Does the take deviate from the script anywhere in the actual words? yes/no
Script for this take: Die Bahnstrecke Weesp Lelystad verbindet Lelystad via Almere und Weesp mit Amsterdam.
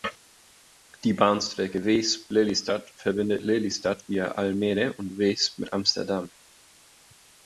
no